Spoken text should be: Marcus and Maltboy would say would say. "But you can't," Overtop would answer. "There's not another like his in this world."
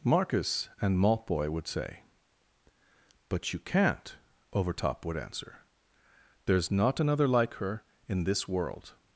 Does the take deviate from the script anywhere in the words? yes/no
yes